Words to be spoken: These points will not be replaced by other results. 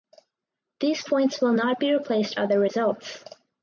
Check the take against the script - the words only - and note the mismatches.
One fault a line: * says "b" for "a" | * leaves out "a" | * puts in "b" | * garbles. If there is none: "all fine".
* leaves out "by"